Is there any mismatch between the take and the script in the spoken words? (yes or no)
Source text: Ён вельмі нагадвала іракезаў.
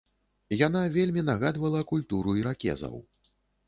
yes